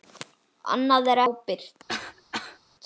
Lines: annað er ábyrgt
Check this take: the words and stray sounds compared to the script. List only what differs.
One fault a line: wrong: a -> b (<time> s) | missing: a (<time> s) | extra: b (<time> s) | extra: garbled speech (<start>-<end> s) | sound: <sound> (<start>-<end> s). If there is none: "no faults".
sound: cough (1.9-2.6 s)